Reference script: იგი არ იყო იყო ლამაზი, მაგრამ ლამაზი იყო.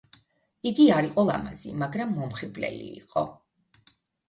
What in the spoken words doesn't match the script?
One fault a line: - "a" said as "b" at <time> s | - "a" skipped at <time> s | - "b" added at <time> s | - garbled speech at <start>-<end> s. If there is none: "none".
- "იყო" skipped at 1.2 s
- "ლამაზი" said as "მომხიბვლელი" at 2.2 s